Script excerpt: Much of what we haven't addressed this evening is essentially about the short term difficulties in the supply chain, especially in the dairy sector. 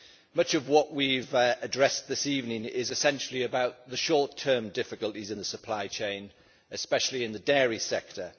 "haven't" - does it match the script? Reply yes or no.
no